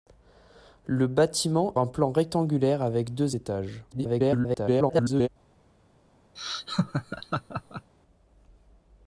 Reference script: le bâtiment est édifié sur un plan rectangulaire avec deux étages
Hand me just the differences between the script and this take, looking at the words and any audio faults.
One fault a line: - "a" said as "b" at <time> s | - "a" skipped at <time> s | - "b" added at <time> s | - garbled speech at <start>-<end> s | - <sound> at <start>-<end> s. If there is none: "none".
- "est édifié sur" skipped at 1.8 s
- garbled speech at 3.9-5.3 s
- laugh at 6.4-7.9 s